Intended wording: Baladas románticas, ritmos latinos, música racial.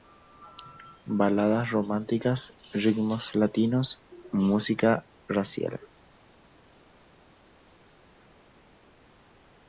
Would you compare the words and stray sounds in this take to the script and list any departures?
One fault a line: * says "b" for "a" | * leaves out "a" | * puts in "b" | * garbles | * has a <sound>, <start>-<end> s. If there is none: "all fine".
all fine